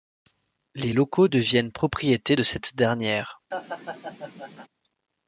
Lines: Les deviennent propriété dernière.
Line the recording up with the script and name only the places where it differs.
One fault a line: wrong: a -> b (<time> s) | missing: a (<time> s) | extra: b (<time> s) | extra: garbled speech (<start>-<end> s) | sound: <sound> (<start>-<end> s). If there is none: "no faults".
extra: locaux (0.9 s)
extra: de cette (2.3 s)
sound: laugh (3.5-4.7 s)